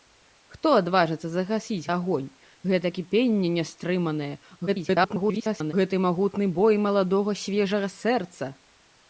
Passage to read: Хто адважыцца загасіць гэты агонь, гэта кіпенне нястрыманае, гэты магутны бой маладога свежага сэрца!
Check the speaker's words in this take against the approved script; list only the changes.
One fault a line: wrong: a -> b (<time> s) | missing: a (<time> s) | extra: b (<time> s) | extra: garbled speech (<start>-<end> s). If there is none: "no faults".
missing: гэты (1.9 s)
extra: garbled speech (4.7-5.7 s)